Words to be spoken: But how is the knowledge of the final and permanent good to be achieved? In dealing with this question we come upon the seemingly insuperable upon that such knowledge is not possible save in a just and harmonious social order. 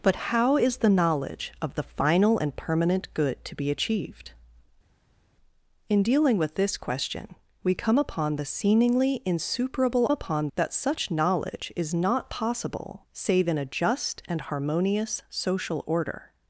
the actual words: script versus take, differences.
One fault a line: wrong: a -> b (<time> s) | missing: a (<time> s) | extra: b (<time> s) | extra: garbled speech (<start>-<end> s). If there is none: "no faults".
no faults